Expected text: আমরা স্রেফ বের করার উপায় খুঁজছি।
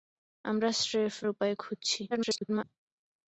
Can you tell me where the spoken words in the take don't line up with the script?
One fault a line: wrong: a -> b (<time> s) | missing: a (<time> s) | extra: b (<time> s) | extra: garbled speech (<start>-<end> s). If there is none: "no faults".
missing: বের করার (1.1 s)
extra: garbled speech (2.1-2.6 s)